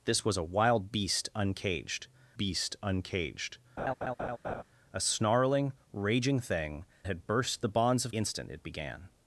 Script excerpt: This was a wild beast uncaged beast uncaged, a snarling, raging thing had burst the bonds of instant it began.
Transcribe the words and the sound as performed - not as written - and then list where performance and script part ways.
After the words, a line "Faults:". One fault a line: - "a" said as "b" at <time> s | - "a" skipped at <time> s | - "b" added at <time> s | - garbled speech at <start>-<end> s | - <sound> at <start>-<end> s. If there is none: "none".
This was a wild beast uncaged beast uncaged, a snarling, raging thing had burst the bonds of instant it began.
Faults:
- laugh at 3.8-4.6 s